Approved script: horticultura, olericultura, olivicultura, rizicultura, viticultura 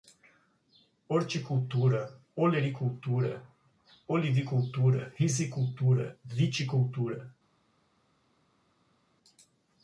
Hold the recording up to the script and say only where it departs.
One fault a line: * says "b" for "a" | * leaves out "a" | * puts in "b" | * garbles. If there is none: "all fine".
all fine